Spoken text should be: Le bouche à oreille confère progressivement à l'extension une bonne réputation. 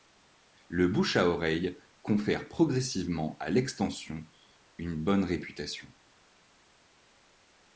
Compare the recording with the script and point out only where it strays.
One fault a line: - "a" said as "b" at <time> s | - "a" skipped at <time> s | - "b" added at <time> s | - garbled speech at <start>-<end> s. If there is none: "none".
none